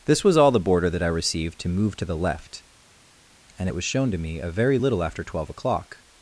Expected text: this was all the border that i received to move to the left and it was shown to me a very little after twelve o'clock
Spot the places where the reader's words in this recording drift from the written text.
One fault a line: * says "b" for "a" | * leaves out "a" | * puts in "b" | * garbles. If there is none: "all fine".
all fine